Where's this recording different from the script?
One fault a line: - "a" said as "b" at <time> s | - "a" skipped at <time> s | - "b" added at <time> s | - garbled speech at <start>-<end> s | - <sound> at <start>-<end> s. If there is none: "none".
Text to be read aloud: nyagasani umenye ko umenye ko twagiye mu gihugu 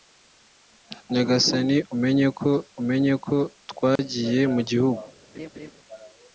- dropout at 4.0-4.0 s
- laugh at 5.3-5.7 s